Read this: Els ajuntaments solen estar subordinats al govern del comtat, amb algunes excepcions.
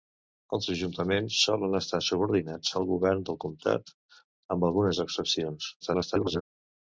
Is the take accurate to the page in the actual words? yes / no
no